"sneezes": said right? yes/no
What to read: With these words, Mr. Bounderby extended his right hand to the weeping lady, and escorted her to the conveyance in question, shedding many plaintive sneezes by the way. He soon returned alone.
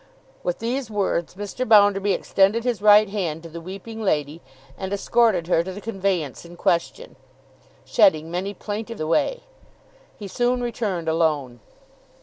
no